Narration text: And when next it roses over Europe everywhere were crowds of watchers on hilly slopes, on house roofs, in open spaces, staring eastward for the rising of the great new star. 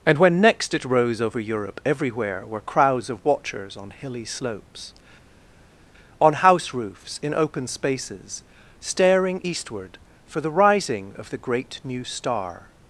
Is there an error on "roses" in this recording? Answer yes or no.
yes